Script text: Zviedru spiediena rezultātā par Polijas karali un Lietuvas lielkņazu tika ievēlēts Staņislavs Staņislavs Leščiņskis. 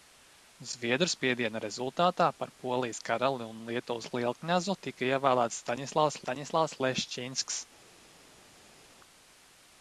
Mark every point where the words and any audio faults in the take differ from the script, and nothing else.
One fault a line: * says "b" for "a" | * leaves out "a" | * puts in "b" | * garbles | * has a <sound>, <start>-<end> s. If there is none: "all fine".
all fine